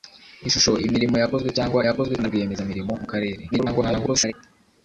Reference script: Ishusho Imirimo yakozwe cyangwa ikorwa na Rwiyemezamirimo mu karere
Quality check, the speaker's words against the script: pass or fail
fail